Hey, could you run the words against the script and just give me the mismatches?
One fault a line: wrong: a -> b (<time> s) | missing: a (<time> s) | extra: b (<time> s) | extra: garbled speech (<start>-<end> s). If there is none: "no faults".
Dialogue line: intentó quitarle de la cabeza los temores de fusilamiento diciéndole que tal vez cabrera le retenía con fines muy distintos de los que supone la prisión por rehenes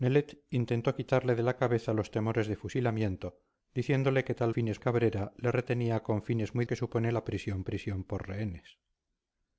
wrong: vez -> fines (4.5 s)
missing: distintos de los (6.6 s)
extra: prisión (7.6 s)